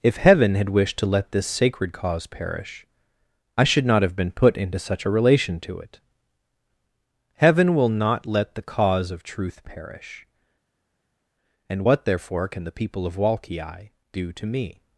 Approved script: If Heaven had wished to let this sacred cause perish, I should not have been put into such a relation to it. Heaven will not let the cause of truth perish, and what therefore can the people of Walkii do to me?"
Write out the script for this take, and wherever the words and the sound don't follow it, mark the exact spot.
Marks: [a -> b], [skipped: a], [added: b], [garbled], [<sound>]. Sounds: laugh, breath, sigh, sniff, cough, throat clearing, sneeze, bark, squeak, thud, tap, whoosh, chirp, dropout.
If Heaven had wished to let this sacred cause perish, I should not have been put into such a relation to it. Heaven will not let the cause of truth perish, and what therefore can the people of Walkii do to me?"